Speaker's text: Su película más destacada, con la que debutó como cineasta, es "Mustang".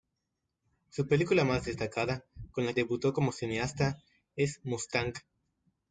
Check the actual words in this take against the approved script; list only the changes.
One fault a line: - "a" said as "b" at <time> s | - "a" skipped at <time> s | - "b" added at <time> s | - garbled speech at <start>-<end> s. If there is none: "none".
- "que" skipped at 2.7 s